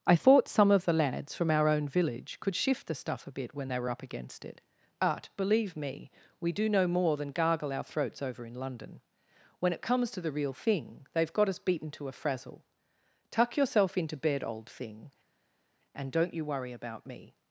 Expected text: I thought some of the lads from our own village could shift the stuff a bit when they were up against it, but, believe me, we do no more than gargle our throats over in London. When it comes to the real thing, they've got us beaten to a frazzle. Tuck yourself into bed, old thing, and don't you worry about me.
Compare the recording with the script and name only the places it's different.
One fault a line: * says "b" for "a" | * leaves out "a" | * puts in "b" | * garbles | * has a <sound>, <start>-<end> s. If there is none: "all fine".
all fine